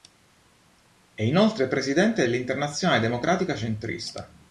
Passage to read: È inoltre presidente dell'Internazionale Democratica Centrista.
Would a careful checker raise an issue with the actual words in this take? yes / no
no